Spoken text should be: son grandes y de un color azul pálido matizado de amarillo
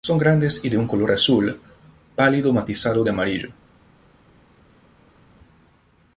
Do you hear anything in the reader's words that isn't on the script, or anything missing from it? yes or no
no